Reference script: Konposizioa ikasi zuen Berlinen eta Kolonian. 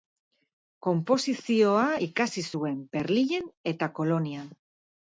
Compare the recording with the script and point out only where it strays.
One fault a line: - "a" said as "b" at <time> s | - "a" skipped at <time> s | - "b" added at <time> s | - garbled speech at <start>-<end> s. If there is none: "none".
none